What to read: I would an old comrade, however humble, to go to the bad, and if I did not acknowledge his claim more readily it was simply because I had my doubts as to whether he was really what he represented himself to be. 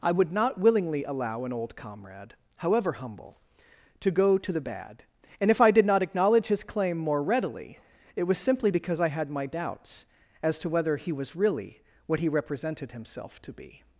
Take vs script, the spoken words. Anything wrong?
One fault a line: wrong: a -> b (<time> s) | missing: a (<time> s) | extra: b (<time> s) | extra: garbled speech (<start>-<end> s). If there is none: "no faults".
extra: not willingly allow (0.3 s)